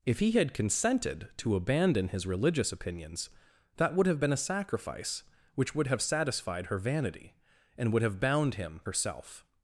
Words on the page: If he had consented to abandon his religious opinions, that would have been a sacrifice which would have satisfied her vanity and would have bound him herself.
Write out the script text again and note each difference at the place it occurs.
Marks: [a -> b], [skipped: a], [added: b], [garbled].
If he had consented to abandon his religious opinions, that would have been a sacrifice which would have satisfied her vanity and would have bound him herself.